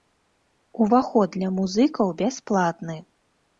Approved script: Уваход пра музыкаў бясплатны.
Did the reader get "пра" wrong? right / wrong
wrong